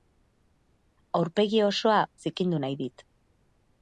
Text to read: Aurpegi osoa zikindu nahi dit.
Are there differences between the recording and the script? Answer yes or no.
no